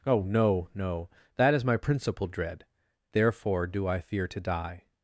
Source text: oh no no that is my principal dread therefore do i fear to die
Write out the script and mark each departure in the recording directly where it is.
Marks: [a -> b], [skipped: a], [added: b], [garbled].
oh no no that is my principal dread therefore do i fear to die